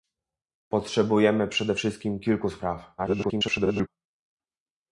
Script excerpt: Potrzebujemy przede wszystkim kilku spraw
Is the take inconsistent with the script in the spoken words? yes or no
yes